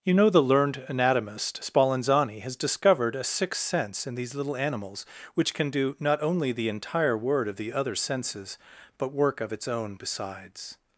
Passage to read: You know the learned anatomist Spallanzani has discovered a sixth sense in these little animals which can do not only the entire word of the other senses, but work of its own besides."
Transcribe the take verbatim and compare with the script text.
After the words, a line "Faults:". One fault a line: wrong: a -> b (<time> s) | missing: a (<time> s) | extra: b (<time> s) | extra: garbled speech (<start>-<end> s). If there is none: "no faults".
You know the learned anatomist Spallanzani has discovered a sixth sense in these little animals which can do not only the entire word of the other senses, but work of its own besides."
Faults:
no faults